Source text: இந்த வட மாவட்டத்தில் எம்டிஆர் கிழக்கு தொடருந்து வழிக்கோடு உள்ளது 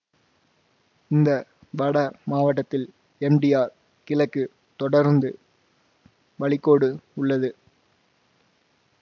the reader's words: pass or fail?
pass